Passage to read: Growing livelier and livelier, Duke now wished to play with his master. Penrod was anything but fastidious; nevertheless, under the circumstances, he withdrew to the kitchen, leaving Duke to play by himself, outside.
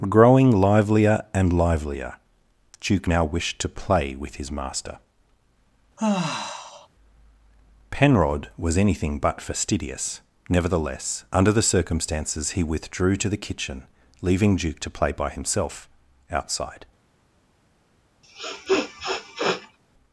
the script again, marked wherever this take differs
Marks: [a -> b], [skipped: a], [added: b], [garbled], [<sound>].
Growing livelier and livelier, Duke now wished to play with his master. [sigh] Penrod was anything but fastidious; nevertheless, under the circumstances, he withdrew to the kitchen, leaving Duke to play by himself, outside. [sniff]